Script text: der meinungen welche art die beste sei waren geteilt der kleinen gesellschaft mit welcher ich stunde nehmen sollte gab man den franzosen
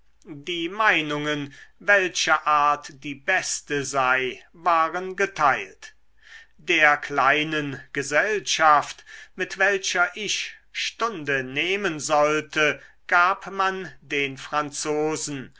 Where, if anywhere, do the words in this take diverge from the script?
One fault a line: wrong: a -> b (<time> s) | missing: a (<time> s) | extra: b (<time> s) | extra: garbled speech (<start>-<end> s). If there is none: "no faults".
wrong: der -> die (0.2 s)